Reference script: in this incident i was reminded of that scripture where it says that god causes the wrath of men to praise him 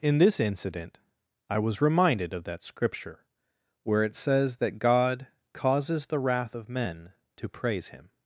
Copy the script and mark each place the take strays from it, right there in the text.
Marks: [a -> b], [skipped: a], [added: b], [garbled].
in this incident i was reminded of that scripture where it says that god causes the wrath of men to praise him